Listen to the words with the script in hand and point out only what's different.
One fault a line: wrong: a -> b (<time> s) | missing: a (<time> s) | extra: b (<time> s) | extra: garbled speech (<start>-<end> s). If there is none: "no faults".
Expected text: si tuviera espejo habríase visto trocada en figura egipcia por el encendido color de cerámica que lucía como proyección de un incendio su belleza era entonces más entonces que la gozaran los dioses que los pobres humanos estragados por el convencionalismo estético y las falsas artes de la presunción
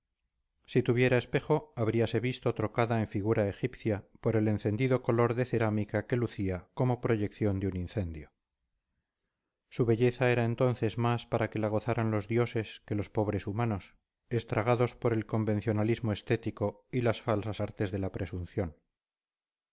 wrong: entonces -> para (11.3 s)